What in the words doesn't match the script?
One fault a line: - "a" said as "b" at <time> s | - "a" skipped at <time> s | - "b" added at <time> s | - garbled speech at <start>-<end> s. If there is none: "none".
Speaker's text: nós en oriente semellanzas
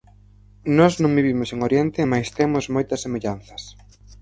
- "non vivimos" added at 1.0 s
- "mais temos moitas" added at 2.1 s